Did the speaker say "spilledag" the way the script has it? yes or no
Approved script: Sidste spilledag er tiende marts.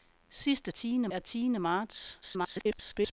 no